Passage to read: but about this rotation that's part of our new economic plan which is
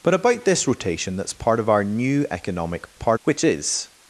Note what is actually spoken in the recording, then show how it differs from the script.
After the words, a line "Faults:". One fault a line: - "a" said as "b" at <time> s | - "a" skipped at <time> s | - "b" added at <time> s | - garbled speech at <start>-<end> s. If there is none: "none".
but about this rotation that's part of our new economic part which is
Faults:
- "plan" said as "part" at 2.9 s